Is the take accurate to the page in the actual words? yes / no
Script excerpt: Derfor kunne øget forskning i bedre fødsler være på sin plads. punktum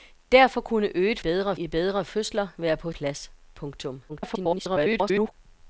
no